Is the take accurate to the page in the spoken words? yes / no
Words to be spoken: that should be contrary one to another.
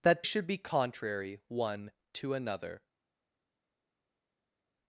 yes